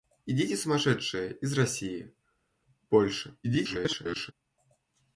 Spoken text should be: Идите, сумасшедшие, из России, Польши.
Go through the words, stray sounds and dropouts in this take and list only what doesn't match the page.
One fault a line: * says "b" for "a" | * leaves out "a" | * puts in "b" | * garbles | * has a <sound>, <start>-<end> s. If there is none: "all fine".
* garbles